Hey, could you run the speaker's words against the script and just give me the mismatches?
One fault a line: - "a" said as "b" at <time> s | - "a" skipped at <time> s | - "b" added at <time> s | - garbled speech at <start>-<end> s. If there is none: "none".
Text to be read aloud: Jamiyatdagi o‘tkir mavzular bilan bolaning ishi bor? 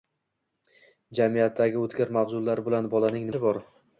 none